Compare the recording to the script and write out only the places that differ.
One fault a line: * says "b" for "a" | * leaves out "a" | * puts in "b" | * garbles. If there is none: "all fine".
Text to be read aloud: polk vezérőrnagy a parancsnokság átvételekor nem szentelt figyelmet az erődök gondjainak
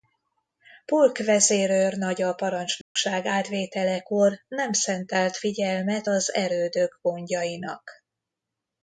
all fine